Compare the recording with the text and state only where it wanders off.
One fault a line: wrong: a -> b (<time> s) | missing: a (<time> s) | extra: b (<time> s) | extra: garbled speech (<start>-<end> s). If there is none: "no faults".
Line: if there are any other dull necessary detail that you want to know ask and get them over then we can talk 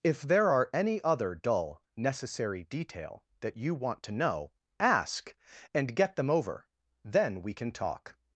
no faults